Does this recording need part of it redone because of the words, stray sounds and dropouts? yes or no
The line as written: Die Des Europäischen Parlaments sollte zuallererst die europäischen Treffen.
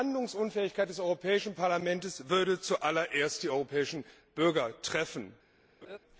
yes